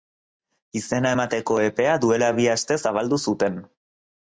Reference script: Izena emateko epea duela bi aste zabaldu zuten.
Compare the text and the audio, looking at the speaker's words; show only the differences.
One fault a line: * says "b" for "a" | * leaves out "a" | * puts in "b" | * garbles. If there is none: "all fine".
all fine